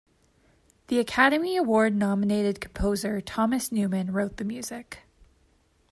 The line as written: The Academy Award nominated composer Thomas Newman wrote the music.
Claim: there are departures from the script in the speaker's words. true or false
false